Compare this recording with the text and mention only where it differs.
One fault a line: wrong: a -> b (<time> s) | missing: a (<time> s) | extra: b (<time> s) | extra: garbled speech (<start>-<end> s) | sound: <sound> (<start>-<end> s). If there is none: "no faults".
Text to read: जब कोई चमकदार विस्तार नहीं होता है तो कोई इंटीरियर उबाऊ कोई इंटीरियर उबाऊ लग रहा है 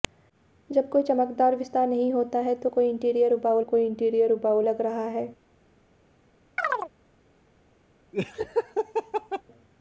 sound: chirp (6.6-6.9 s)
sound: laugh (8.1-9.4 s)